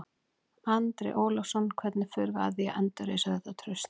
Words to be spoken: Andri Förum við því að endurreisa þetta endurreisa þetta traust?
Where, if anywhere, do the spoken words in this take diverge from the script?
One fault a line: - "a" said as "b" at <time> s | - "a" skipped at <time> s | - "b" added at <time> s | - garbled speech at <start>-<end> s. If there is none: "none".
- "Ólafsson Hvernig" added at 1.2 s
- "að" added at 2.5 s
- "endurreisa þetta" skipped at 3.6 s